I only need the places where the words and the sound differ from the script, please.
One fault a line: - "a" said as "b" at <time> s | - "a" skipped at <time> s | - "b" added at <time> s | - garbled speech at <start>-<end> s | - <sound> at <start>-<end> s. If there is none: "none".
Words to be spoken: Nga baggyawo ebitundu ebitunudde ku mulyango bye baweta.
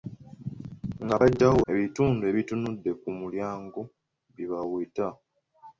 none